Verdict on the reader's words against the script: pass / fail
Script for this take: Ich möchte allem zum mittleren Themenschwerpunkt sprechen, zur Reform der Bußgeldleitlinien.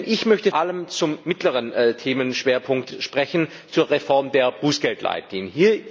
pass